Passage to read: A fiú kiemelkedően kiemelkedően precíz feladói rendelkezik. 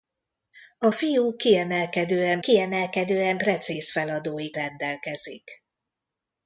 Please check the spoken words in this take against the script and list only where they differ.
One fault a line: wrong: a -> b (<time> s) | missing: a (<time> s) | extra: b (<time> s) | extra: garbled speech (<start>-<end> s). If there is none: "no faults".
no faults